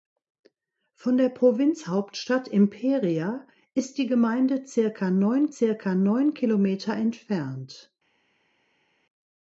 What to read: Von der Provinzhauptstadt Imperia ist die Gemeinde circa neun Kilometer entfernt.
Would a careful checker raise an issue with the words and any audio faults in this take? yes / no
yes